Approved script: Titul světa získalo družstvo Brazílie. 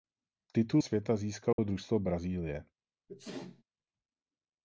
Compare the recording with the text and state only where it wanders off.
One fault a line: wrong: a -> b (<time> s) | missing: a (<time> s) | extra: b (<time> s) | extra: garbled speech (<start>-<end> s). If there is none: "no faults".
no faults